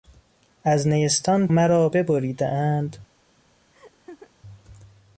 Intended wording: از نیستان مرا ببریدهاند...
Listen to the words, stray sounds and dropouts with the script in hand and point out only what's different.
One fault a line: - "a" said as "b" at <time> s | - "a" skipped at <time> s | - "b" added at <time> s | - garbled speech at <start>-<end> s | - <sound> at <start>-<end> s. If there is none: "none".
- laugh at 3.7-4.3 s